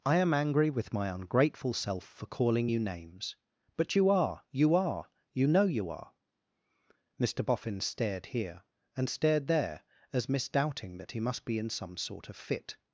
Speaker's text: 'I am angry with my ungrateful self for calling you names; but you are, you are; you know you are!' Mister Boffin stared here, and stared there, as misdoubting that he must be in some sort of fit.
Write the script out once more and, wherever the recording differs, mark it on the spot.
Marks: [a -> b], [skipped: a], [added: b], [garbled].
'I am angry with my ungrateful self for calling you names; but you are, you are; you know you are!' Mister Boffin stared here, and stared there, as misdoubting that he must be in some sort of fit.